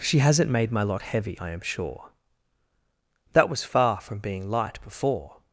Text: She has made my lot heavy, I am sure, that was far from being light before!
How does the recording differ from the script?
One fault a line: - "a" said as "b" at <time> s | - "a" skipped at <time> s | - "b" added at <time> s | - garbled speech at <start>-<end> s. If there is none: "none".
- "has" said as "hasn't" at 0.2 s